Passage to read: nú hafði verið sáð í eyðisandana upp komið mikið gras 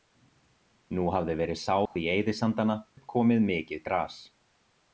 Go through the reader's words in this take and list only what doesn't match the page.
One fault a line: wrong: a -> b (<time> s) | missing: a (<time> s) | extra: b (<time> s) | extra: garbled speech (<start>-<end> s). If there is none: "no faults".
no faults